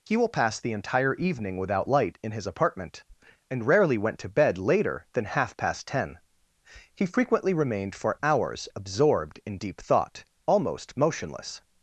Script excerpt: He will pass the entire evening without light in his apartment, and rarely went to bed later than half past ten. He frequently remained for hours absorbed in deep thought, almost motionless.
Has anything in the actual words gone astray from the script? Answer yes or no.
no